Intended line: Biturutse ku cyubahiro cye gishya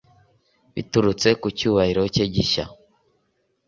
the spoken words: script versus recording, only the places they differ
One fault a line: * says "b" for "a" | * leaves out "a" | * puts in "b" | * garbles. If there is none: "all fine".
all fine